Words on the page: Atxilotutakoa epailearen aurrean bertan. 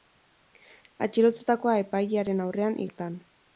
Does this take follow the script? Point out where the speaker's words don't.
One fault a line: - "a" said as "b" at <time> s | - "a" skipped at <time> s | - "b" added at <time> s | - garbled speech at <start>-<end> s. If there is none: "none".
none